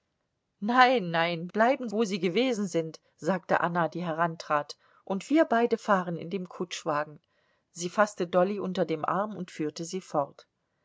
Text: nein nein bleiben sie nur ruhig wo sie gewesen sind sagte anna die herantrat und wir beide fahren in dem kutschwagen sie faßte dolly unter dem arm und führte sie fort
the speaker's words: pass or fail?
fail